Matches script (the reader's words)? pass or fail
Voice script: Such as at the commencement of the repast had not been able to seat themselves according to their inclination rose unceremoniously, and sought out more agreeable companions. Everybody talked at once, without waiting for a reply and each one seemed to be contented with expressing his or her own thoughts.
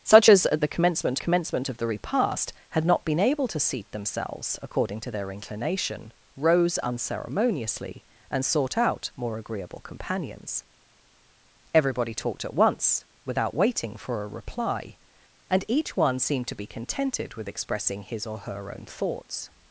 fail